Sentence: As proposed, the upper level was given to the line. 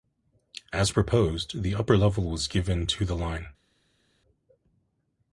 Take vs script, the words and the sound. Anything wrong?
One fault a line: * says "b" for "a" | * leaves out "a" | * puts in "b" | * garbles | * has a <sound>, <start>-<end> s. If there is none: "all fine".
all fine